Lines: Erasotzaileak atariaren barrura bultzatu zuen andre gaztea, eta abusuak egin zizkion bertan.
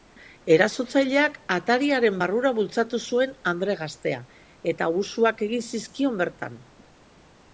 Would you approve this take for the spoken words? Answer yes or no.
yes